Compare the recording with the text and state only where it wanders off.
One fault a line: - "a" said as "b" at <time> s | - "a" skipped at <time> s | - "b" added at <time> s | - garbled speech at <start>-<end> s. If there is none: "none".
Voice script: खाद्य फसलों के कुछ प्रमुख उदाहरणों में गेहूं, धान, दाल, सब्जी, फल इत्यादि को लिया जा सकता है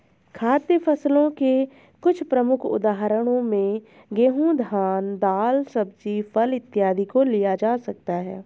none